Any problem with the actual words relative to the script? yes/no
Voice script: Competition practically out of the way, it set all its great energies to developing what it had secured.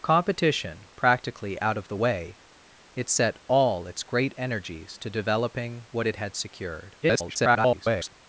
yes